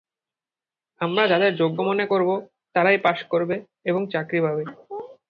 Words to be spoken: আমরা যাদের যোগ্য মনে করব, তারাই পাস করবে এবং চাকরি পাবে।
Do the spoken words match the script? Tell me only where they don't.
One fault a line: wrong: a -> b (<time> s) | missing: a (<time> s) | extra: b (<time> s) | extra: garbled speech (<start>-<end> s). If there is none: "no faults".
no faults